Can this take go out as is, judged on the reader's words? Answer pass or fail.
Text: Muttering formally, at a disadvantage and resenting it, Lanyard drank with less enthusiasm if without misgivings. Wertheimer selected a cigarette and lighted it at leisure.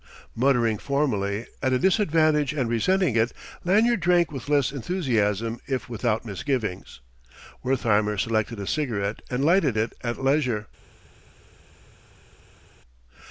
pass